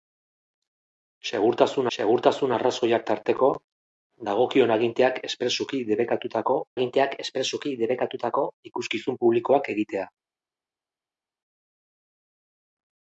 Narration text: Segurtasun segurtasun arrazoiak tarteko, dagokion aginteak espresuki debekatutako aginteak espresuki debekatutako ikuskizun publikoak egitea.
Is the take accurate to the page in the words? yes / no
yes